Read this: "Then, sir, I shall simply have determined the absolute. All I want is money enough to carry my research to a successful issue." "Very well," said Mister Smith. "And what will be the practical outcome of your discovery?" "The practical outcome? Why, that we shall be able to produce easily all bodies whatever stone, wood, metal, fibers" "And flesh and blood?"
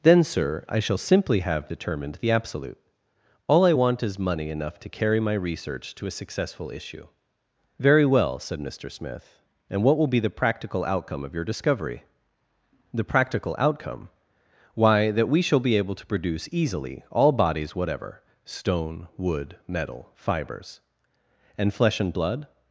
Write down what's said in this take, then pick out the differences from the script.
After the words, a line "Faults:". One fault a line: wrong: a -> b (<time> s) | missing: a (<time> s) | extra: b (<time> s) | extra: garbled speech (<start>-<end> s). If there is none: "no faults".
"Then, sir, I shall simply have determined the absolute. All I want is money enough to carry my research to a successful issue." "Very well," said Mister Smith. "And what will be the practical outcome of your discovery?" "The practical outcome? Why, that we shall be able to produce easily all bodies whatever stone, wood, metal, fibers" "And flesh and blood?"
Faults:
no faults